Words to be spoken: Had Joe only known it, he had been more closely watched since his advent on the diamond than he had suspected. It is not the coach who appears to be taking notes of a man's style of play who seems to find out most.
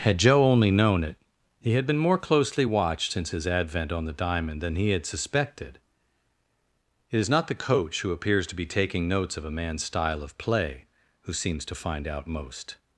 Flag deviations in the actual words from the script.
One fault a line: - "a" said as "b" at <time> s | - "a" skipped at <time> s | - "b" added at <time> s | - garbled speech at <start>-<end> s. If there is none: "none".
none